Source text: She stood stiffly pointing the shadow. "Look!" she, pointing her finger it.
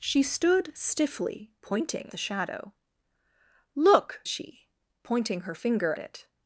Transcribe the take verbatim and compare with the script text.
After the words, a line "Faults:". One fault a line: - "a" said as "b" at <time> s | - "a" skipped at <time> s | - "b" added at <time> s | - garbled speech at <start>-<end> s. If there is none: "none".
She stood stiffly pointing the shadow. "Look!" she, pointing her finger it.
Faults:
none